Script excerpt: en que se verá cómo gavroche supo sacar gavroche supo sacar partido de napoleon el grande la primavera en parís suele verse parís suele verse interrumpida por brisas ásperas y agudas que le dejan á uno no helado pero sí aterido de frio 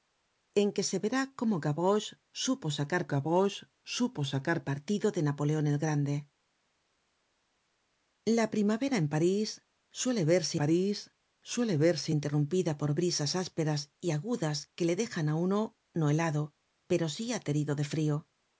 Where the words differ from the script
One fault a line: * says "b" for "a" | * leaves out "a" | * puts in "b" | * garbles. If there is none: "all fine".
all fine